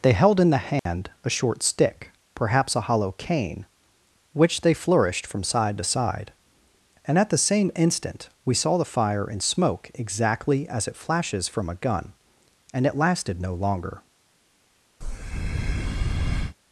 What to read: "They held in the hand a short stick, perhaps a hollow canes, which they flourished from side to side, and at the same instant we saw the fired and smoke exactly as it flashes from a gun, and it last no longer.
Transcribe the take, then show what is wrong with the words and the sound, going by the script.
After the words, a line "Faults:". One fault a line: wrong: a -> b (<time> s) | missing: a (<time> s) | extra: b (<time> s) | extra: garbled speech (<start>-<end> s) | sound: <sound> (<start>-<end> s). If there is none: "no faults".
"They held in the hand a short stick, perhaps a hollow cane, which they flourished from side to side, and at the same instant we saw the fire and smoke exactly as it flashes from a gun, and it lasted no longer.
Faults:
sound: dropout (0.8-0.9 s)
wrong: canes -> cane (3.1 s)
wrong: fired -> fire (8.8 s)
wrong: last -> lasted (13.0 s)
sound: breath (15.0-16.6 s)